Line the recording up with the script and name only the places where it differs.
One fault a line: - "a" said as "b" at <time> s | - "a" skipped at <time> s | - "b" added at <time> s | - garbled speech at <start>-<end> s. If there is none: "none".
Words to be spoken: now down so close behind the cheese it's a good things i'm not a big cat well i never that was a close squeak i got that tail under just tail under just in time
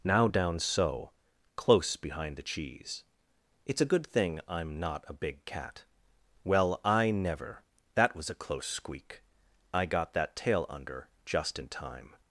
- "things" said as "thing" at 4.1 s
- "tail under just" skipped at 11.6 s